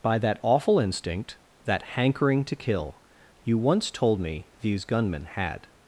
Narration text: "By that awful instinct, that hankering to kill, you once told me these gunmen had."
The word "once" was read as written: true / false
true